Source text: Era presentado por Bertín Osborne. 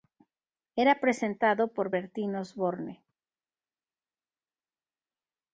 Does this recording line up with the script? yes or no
yes